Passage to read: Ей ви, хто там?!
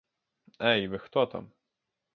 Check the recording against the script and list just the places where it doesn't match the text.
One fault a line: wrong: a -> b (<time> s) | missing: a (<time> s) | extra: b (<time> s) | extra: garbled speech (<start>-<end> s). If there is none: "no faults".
no faults